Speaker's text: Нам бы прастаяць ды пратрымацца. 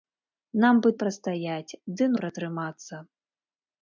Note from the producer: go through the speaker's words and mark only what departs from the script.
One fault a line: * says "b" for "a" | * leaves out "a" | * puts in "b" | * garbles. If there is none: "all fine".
all fine